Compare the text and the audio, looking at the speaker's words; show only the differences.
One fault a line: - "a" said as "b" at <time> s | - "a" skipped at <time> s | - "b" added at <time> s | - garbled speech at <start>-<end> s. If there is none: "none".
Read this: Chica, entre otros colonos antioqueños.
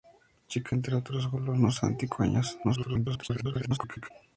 - garbled speech at 2.6-4.1 s